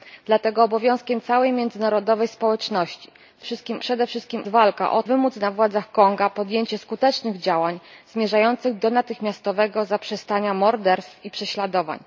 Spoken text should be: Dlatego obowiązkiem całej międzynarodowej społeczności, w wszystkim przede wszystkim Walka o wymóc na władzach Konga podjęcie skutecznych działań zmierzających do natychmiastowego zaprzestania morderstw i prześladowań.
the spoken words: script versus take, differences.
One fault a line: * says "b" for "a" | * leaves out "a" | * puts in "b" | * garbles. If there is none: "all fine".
all fine